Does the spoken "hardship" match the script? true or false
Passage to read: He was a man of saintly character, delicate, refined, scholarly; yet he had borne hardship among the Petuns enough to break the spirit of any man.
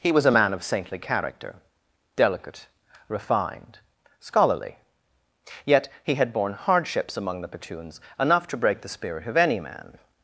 false